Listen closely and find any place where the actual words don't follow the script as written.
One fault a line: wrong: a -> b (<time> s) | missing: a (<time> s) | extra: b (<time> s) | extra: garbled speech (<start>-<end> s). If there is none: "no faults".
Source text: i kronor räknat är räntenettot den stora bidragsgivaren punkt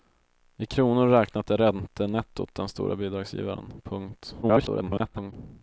extra: garbled speech (4.4-5.3 s)